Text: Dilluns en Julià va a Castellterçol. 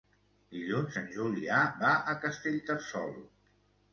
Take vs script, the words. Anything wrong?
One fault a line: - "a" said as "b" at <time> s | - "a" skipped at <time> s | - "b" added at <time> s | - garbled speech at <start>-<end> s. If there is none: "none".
none